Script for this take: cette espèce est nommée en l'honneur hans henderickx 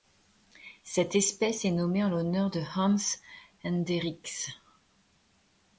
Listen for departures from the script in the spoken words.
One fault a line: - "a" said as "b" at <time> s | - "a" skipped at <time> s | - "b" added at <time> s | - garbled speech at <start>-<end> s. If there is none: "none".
- "de" added at 2.5 s